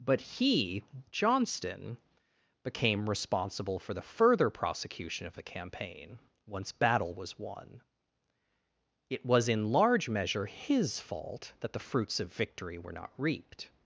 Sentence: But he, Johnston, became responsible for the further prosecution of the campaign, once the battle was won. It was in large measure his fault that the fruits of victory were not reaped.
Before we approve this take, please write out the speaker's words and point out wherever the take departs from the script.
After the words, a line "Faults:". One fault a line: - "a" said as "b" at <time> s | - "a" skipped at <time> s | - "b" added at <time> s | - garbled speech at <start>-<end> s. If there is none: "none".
But he, Johnston, became responsible for the further prosecution of the campaign, once battle was won. It was in large measure his fault that the fruits of victory were not reaped.
Faults:
- "the" skipped at 6.7 s